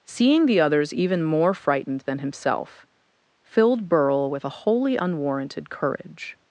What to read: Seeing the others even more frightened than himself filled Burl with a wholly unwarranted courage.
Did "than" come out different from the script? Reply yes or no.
no